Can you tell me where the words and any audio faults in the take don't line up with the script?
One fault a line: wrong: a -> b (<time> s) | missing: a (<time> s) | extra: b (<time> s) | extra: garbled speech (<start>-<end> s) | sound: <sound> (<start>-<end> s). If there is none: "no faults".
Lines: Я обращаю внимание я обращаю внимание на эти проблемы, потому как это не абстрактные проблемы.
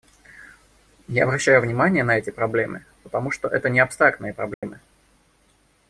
missing: я обращаю внимание (2.0 s)
wrong: как -> что (3.3 s)
sound: dropout (4.5-4.6 s)